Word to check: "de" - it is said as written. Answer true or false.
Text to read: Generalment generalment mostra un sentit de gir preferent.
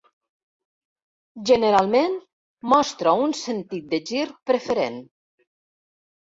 true